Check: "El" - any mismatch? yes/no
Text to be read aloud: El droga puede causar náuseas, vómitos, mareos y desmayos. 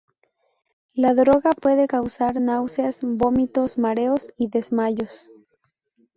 yes